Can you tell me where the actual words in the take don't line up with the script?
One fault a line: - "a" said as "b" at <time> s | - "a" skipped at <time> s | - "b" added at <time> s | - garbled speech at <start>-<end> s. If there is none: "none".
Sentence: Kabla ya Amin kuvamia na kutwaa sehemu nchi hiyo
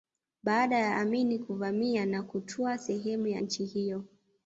- "Kabla" said as "Baada" at 0.4 s
- "ya" added at 3.3 s